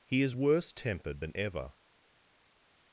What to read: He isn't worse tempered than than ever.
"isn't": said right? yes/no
no